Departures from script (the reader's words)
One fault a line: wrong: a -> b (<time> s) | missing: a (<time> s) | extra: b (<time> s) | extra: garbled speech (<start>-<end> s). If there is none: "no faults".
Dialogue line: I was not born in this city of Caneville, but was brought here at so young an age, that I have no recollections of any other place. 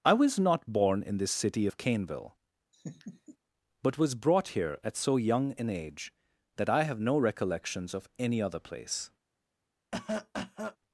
no faults